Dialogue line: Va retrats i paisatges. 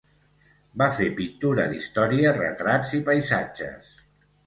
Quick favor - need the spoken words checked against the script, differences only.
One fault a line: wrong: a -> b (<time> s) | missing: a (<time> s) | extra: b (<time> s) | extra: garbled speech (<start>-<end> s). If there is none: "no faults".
extra: fer pintura d'història (0.9 s)